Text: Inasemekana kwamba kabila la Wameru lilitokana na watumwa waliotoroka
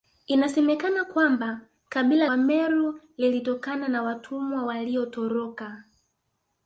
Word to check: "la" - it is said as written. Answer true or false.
false